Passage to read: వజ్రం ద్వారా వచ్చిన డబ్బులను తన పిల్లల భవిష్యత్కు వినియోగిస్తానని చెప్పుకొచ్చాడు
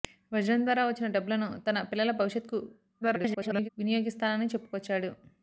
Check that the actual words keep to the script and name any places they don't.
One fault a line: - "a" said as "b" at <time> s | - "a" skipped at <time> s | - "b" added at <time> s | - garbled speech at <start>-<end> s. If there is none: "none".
- garbled speech at 3.0-3.7 s